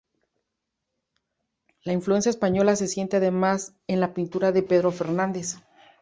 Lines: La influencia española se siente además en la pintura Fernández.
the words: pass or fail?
fail